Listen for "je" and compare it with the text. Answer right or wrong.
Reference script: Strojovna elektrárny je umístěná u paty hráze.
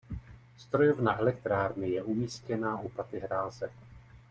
right